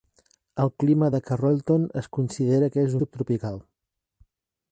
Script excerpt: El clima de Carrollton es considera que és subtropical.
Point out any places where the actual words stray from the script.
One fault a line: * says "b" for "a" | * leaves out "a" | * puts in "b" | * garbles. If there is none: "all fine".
all fine